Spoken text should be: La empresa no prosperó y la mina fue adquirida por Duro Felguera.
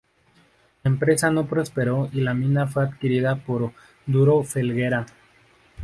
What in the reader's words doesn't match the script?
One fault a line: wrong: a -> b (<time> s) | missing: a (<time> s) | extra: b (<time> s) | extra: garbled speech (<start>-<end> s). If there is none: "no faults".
no faults